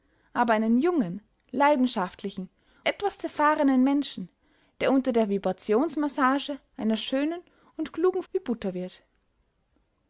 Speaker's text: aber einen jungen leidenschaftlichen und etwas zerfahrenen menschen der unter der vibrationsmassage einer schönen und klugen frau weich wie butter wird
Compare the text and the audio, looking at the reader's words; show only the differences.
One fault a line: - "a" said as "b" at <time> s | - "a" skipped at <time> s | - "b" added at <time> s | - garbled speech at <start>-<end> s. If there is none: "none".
- "und" skipped at 2.5 s
- "frau weich" skipped at 8.2 s